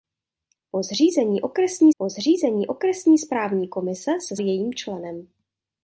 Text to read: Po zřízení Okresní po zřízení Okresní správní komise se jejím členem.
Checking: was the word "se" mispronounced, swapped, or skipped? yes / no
no